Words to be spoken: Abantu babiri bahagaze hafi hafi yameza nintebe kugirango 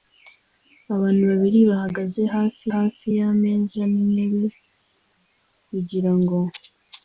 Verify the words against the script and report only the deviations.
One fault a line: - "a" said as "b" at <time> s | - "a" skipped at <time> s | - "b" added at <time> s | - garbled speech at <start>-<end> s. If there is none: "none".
none